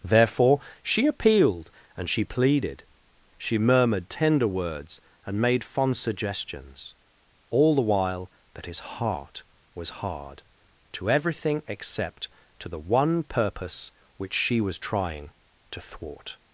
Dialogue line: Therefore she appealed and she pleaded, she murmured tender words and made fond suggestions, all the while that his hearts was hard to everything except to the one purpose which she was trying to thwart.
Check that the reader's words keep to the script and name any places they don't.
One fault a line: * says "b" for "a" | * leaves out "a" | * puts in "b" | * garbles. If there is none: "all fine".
* says "heart" for "hearts"